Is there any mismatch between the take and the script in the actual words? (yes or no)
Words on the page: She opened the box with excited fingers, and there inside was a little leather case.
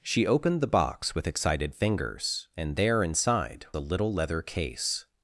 yes